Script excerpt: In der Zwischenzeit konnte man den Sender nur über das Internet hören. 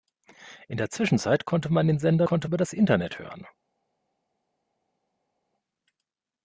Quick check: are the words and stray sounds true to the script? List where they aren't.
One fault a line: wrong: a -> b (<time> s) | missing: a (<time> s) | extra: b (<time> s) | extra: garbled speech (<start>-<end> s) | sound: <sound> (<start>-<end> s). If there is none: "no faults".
wrong: nur -> konnte (2.2 s)